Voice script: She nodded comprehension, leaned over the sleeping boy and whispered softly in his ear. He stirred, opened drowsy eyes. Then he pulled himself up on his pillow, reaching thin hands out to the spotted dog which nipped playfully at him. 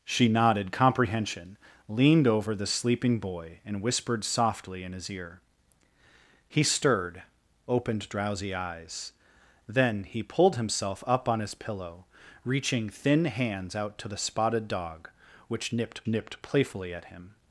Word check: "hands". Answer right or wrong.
right